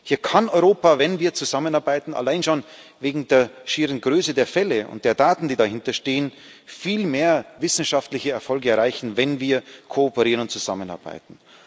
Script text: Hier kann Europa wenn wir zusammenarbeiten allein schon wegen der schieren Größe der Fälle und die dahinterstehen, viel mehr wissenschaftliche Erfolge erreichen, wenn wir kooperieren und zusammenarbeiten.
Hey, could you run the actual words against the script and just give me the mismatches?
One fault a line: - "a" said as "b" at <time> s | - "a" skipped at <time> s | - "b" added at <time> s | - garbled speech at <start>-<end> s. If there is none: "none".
- "der Daten" added at 5.0 s